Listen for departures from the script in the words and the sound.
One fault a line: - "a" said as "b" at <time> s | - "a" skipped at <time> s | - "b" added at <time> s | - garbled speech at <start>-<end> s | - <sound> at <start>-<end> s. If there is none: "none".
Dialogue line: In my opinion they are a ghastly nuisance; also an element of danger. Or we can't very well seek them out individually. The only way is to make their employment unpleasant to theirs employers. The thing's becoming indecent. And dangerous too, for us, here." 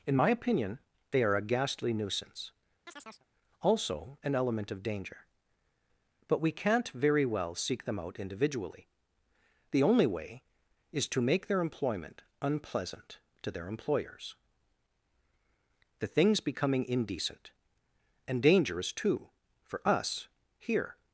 - chirp at 2.9-3.3 s
- "Or" said as "But" at 6.3 s
- "theirs" said as "their" at 13.5 s